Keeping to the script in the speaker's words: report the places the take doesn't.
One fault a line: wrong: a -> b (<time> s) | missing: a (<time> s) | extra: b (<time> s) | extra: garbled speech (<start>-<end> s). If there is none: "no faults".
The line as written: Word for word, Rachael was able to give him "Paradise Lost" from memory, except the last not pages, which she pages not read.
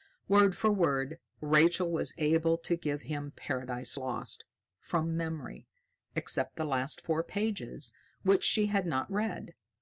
wrong: not -> four (7.0 s)
wrong: pages -> had (8.7 s)